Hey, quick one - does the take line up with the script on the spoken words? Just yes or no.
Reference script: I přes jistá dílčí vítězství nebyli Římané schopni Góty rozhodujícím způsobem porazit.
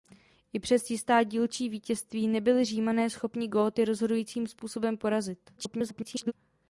no